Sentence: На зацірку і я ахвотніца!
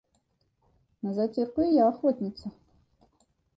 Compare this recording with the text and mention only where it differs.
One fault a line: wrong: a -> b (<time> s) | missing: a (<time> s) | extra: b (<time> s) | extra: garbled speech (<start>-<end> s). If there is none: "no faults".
no faults